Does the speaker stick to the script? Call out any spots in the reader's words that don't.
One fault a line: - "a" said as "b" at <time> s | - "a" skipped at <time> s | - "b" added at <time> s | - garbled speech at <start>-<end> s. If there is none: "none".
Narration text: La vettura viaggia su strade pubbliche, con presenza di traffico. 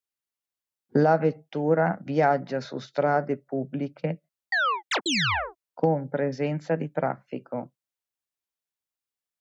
none